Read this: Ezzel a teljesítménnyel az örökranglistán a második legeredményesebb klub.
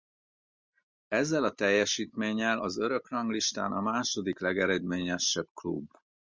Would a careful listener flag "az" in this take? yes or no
no